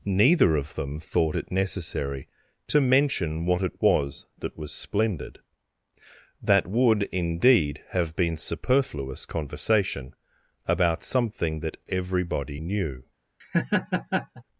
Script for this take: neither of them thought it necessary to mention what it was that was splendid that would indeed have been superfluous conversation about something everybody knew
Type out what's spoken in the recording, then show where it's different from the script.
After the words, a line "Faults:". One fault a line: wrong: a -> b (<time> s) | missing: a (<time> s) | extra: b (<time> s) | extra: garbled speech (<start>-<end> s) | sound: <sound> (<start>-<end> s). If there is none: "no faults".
neither of them thought it necessary to mention what it was that was splendid that would indeed have been superfluous conversation about something that everybody knew
Faults:
extra: that (11.6 s)
sound: laugh (13.4-14.4 s)